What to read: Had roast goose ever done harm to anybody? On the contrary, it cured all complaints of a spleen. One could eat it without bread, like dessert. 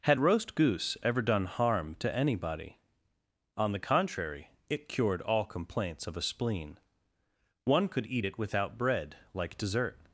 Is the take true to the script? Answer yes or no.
yes